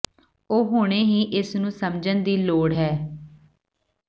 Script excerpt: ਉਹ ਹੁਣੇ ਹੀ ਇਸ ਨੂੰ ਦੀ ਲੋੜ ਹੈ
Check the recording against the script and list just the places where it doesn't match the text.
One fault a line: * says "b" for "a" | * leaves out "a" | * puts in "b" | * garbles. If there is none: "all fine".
* puts in "ਸਮਝਣ"